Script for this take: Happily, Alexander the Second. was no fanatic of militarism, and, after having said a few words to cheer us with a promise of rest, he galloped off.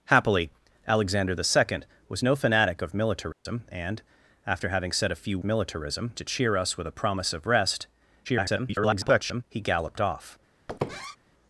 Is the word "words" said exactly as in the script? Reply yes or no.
no